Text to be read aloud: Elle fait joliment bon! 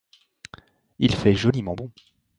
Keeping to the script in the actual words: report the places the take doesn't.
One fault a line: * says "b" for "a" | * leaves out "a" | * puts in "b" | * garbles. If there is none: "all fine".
* says "Il" for "Elle"